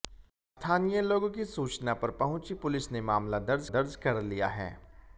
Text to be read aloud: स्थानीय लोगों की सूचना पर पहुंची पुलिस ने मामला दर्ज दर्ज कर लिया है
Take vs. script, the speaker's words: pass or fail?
pass